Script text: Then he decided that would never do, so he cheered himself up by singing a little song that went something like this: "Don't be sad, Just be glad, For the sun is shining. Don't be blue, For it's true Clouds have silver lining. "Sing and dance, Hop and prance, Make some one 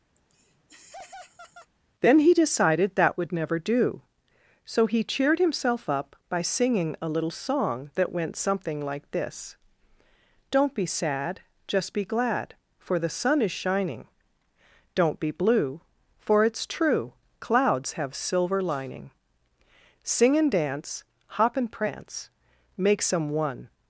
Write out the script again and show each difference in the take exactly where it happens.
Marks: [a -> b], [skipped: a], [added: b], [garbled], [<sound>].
[laugh] Then he decided that would never do, so he cheered himself up by singing a little song that went something like this: "Don't be sad, Just be glad, For the sun is shining. Don't be blue, For it's true Clouds have silver lining. "Sing and dance, Hop and prance, Make some one